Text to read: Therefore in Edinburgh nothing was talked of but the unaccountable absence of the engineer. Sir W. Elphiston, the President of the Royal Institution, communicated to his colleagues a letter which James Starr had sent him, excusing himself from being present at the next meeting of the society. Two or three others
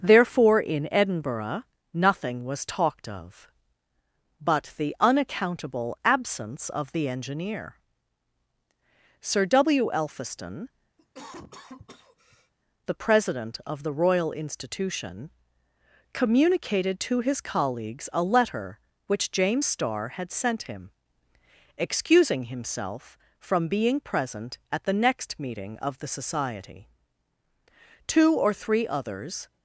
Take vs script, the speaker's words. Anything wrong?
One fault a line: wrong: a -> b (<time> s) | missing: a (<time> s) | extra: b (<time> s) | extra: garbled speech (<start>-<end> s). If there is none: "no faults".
no faults